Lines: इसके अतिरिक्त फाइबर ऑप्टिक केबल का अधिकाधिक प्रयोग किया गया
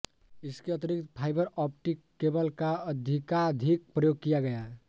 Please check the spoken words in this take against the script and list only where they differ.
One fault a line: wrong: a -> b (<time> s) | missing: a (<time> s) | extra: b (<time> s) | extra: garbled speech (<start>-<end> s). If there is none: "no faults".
no faults